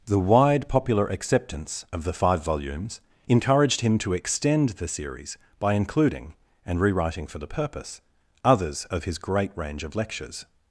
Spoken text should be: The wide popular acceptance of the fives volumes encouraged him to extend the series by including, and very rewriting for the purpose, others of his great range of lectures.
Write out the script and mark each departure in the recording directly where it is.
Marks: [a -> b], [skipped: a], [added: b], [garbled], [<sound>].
The wide popular acceptance of the [fives -> five] volumes encouraged him to extend the series by including, and [skipped: very] rewriting for the purpose, others of his great range of lectures.